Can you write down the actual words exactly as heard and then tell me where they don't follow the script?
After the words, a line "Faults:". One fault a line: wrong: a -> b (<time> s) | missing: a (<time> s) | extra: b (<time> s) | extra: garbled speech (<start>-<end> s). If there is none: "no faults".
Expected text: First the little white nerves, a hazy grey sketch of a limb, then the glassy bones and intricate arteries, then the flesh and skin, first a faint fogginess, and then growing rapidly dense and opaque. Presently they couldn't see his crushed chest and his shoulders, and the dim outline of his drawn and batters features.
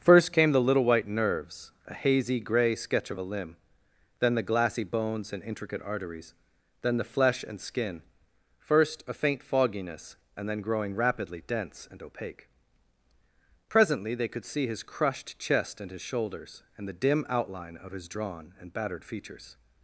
First came the little white nerves, a hazy grey sketch of a limb, then the glassy bones and intricate arteries, then the flesh and skin, first a faint fogginess, and then growing rapidly dense and opaque. Presently they could see his crushed chest and his shoulders, and the dim outline of his drawn and battered features.
Faults:
extra: came (0.3 s)
wrong: couldn't -> could (14.3 s)
wrong: batters -> battered (18.7 s)